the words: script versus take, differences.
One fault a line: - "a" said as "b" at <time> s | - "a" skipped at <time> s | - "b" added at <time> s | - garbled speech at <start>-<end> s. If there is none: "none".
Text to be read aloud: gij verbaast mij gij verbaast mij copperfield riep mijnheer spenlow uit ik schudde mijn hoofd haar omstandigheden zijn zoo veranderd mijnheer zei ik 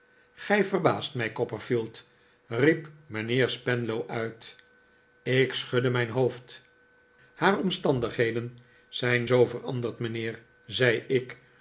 - "gij verbaast mij" skipped at 1.3 s